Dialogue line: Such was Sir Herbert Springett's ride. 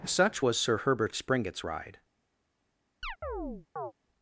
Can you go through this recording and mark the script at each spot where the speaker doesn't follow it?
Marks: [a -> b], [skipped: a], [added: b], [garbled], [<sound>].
Such was Sir Herbert Springett's ride. [chirp]